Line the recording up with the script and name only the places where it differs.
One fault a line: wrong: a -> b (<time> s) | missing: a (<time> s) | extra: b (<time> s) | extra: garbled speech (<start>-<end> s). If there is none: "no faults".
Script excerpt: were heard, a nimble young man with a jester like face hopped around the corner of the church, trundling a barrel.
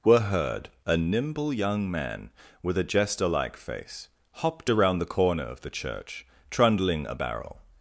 no faults